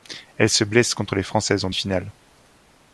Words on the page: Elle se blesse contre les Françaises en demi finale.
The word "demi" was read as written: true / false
false